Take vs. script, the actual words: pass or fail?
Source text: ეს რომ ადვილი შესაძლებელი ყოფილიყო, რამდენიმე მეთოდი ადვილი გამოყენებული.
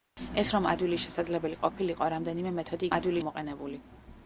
pass